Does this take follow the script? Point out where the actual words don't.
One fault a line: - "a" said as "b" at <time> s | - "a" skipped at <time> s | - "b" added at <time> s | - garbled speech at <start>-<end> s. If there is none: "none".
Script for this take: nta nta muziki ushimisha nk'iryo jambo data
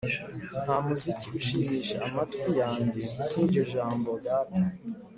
- "nta" skipped at 0.8 s
- "amatwi yanjye" added at 2.1 s